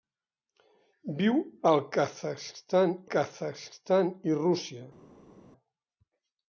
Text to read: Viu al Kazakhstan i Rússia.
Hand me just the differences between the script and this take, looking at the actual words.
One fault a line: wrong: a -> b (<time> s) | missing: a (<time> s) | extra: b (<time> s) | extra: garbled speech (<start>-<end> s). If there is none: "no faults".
extra: Kazakhstan (3.1 s)